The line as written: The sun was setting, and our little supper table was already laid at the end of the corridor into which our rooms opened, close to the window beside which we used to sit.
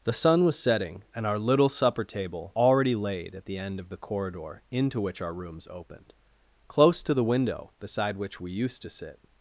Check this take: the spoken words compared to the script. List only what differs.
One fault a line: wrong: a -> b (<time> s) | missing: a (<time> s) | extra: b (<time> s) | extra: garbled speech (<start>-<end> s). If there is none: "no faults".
missing: was (2.5 s)